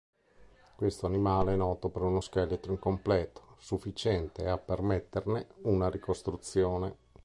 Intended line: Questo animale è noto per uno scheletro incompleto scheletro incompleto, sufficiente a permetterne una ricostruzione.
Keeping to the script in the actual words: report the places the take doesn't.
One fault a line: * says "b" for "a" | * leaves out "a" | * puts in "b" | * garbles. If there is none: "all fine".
* leaves out "scheletro incompleto"